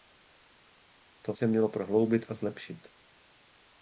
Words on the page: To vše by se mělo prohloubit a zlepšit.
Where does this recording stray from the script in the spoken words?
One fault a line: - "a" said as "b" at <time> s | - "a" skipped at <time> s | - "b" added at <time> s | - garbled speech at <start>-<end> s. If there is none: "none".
- "vše by" skipped at 1.4 s